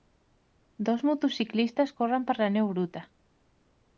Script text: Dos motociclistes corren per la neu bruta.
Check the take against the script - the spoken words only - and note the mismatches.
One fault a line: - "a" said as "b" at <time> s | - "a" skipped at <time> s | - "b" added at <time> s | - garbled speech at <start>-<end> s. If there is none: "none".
none